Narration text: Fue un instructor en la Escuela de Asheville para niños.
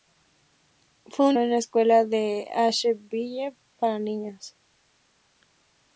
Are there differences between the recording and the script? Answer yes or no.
yes